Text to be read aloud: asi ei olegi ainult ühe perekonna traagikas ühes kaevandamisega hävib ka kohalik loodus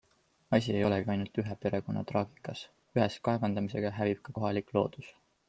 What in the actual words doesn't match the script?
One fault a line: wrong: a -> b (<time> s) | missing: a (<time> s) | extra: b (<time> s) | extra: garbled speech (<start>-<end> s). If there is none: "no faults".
no faults